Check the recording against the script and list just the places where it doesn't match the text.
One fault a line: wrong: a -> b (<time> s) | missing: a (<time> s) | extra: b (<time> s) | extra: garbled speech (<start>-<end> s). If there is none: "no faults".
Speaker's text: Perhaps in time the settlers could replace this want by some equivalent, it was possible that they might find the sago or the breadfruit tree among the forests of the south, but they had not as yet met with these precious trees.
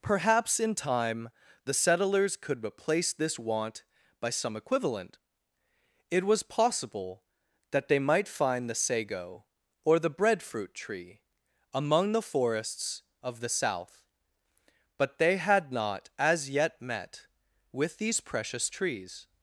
no faults